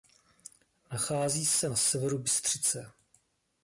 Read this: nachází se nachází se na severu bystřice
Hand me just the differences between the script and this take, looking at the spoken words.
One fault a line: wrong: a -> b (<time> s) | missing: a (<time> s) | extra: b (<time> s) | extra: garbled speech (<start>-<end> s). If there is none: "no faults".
missing: nachází se (1.7 s)